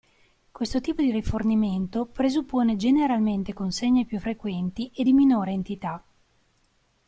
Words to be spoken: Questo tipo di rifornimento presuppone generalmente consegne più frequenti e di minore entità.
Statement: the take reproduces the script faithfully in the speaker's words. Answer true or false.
true